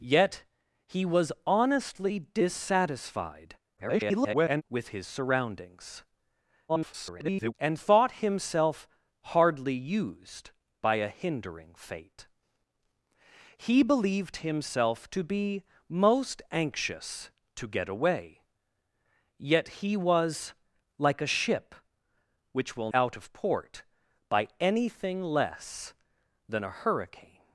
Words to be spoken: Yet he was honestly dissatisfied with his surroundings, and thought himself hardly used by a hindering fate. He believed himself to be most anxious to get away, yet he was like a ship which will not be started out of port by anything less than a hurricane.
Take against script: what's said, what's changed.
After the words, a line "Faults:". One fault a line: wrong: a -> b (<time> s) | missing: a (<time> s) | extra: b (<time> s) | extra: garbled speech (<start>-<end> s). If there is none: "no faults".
Yet he was honestly dissatisfied [garbled] with his surroundings, [garbled] and thought himself hardly used by a hindering fate. He believed himself to be most anxious to get away, yet he was like a ship which will out of port by anything less than a hurricane.
Faults:
extra: garbled speech (3.8-4.6 s)
extra: garbled speech (6.7-7.5 s)
missing: not be started (22.9 s)